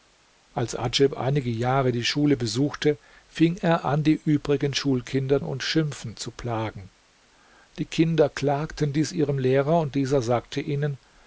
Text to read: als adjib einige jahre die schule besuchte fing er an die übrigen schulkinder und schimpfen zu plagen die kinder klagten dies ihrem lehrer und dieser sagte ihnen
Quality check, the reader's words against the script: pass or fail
pass